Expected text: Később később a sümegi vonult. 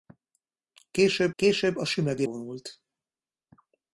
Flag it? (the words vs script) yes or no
no